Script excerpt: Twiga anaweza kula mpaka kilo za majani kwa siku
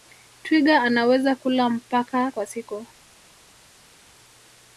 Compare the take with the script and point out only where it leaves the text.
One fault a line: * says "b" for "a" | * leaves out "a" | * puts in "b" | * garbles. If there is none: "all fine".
* leaves out "kilo za majani"